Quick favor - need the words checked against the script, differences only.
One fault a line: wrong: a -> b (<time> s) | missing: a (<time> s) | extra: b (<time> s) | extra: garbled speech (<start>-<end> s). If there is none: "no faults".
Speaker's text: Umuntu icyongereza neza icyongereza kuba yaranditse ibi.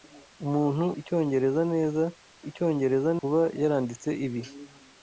no faults